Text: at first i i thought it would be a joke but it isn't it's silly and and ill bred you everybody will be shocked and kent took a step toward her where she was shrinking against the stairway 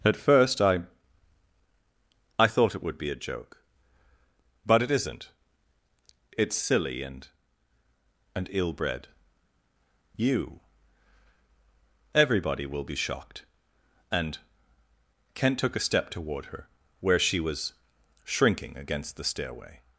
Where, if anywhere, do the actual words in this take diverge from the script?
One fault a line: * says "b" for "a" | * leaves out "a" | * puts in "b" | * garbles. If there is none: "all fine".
all fine